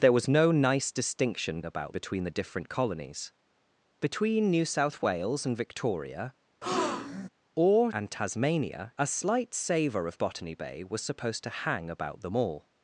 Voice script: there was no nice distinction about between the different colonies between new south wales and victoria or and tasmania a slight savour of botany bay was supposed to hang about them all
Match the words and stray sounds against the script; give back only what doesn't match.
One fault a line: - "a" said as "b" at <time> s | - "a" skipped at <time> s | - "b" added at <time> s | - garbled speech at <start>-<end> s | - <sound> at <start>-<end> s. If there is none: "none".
- breath at 6.6-7.3 s